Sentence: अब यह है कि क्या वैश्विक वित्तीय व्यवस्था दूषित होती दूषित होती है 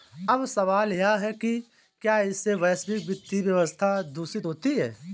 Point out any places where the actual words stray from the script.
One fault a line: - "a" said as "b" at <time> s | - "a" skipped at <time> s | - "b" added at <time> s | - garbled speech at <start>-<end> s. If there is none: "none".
- "सवाल" added at 0.5 s
- "इससे" added at 2.2 s
- "दूषित होती" skipped at 4.8 s